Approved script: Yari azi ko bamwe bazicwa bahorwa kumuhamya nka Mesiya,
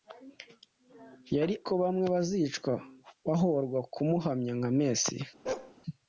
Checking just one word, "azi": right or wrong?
wrong